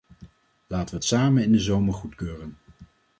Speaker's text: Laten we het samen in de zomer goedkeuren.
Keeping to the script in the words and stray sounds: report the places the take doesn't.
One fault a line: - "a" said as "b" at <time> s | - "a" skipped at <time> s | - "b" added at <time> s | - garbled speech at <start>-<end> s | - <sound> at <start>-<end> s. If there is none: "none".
none